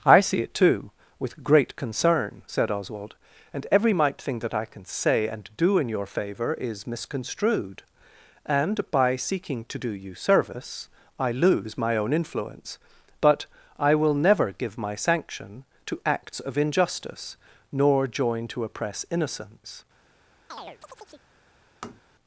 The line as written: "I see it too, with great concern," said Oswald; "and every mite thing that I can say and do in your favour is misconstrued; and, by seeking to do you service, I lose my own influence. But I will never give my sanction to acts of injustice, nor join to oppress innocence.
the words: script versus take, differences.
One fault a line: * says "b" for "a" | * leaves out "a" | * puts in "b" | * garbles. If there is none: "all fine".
all fine